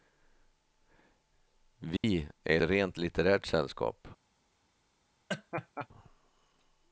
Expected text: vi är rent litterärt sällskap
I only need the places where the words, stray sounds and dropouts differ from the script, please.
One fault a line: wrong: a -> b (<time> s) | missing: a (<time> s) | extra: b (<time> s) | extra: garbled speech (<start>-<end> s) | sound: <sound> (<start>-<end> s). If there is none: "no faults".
sound: dropout (2.0-2.0 s)
sound: laugh (5.3-5.9 s)